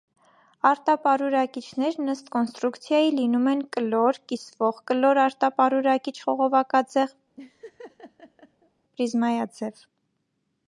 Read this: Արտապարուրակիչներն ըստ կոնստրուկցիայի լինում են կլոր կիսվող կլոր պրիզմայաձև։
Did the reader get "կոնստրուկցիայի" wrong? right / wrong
right